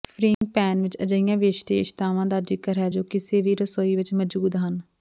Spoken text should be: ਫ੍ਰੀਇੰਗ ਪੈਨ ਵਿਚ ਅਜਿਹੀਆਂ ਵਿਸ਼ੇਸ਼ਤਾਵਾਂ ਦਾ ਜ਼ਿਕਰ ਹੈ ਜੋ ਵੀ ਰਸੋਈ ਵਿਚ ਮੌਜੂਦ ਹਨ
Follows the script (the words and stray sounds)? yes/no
no